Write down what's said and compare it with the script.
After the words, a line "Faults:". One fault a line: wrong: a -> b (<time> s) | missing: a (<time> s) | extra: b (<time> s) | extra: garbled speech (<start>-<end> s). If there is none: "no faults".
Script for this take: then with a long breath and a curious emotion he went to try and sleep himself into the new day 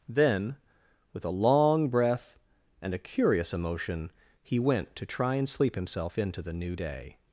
then with a long breath and a curious emotion he went to try and sleep himself into the new day
Faults:
no faults